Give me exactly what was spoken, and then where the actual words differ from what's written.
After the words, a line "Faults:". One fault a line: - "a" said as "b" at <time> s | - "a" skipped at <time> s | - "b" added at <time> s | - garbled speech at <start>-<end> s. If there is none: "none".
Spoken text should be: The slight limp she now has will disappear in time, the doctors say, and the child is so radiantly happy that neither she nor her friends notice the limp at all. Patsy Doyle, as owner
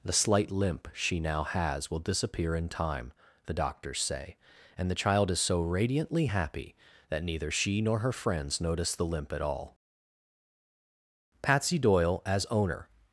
The slight limp she now has will disappear in time, the doctors say, and the child is so radiantly happy that neither she nor her friends notice the limp at all. Patsy Doyle, as owner
Faults:
none